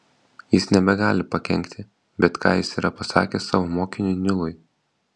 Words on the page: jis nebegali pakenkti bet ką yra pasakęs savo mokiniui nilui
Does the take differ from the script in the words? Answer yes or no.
yes